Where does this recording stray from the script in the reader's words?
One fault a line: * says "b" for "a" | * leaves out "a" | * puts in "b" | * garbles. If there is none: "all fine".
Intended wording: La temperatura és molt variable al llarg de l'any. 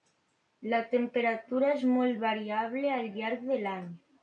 all fine